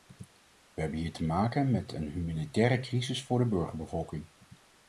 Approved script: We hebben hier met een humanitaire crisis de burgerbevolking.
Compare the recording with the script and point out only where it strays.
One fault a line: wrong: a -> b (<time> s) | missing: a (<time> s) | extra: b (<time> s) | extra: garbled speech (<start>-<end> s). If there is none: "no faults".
extra: te maken (1.1 s)
extra: voor (3.2 s)